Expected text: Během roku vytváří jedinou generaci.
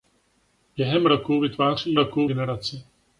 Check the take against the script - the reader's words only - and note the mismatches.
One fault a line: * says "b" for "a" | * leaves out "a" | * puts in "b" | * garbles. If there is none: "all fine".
* says "roku" for "jedinou"